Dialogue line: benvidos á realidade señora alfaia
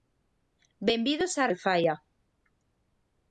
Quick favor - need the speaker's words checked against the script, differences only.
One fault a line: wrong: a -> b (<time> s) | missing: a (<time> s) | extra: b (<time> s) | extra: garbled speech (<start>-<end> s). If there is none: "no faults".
missing: realidade señora (1.4 s)